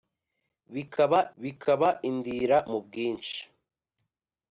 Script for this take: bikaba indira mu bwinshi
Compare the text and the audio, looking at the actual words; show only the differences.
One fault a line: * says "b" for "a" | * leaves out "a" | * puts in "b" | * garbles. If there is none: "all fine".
* puts in "bikaba"